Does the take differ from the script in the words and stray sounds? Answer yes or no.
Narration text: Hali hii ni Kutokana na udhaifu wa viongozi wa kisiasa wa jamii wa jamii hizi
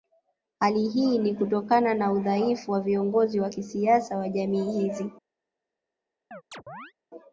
yes